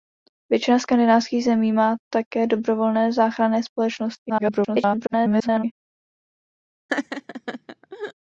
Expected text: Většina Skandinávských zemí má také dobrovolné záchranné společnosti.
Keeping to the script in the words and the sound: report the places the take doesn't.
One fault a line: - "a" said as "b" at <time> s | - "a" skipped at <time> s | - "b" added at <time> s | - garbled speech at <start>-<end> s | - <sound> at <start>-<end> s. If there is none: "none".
- garbled speech at 4.3-5.6 s
- laugh at 6.9-8.1 s